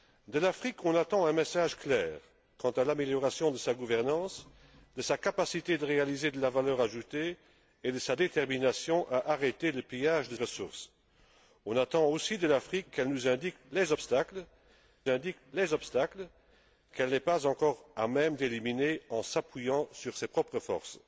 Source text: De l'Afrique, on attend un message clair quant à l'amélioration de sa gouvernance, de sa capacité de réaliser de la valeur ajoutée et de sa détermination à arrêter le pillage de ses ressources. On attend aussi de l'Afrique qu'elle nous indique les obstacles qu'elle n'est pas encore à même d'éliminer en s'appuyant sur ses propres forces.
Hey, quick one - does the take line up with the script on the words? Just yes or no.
no